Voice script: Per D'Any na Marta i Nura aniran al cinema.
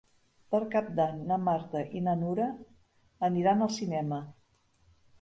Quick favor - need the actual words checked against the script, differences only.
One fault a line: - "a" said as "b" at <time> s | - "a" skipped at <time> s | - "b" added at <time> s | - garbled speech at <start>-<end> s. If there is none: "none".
- "Cap" added at 0.8 s
- "na" added at 2.1 s